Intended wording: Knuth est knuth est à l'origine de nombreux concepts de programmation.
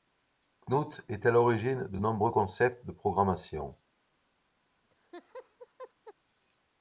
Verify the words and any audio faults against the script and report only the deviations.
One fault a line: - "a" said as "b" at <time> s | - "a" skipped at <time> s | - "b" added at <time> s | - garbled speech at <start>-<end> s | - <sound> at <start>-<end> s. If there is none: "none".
- "knuth est" skipped at 1.3 s
- laugh at 4.8-6.1 s